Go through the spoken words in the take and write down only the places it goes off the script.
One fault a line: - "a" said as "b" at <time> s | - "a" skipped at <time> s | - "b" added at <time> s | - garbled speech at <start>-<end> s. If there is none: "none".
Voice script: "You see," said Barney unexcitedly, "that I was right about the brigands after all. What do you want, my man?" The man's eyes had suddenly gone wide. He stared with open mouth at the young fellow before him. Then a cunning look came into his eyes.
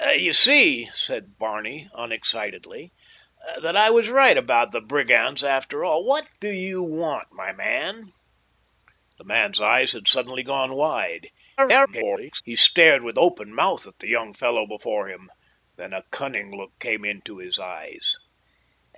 - garbled speech at 11.6-12.4 s